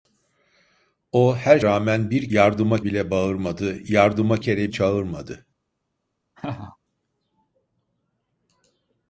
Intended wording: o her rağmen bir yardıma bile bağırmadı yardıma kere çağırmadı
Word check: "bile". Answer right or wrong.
right